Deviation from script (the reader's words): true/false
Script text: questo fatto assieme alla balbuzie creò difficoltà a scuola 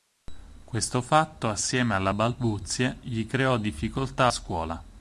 true